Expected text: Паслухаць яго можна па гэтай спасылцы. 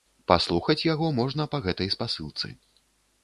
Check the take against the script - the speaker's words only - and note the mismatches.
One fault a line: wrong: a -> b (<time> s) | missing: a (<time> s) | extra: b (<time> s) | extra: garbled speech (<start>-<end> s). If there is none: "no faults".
no faults